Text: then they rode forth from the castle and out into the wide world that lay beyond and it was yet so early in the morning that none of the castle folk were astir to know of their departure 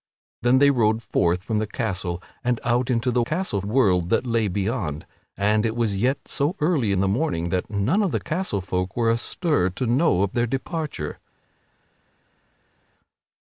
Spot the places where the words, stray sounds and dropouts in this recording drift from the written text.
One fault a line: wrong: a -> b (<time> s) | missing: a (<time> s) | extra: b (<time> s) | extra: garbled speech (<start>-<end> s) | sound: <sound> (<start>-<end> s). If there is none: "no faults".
wrong: wide -> castle (3.2 s)